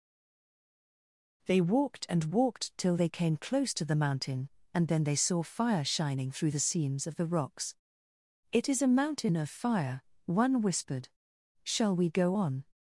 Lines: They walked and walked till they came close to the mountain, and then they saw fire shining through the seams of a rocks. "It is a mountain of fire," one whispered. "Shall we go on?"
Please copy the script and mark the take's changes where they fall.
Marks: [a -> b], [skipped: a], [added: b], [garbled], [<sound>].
They walked and walked till they came close to the mountain, and then they saw fire shining through the seams of [a -> the] rocks. "It is a mountain of fire," one whispered. "Shall we go on?"